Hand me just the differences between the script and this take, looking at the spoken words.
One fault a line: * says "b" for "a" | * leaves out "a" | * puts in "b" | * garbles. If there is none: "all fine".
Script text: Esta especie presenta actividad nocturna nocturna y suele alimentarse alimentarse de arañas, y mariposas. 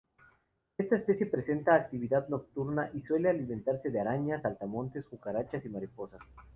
* leaves out "nocturna"
* leaves out "alimentarse"
* puts in "saltamontes cucarachas"